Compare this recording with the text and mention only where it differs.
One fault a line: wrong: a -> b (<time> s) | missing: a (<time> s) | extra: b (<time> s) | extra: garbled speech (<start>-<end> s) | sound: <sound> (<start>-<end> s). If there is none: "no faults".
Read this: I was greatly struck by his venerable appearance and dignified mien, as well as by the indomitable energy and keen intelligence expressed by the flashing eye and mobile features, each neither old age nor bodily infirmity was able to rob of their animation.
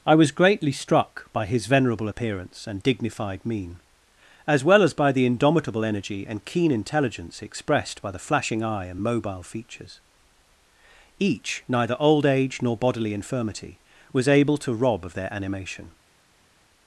no faults